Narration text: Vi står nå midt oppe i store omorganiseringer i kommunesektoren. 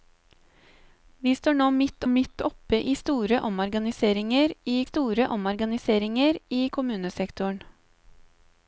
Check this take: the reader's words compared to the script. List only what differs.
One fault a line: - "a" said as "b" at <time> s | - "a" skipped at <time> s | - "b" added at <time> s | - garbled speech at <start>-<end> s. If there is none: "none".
- "midt" added at 2.1 s
- "store omorganiseringer i" added at 4.8 s